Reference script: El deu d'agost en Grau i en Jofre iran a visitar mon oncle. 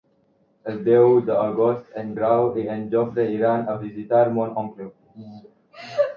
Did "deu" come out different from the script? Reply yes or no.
no